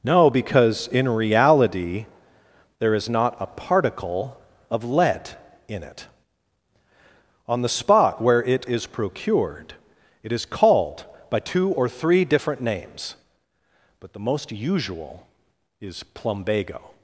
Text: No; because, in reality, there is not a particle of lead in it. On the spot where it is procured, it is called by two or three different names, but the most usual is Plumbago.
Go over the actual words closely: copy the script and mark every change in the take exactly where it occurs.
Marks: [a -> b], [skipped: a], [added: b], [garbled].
No; because, in reality, there is not a particle of lead in it. On the spot where it is procured, it is called by two or three different names, but the most usual is Plumbago.